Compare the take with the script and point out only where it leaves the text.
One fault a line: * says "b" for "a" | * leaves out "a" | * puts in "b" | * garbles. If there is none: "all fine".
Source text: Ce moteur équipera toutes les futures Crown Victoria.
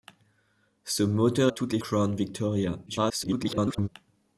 * leaves out "équipera"
* leaves out "futures"
* garbles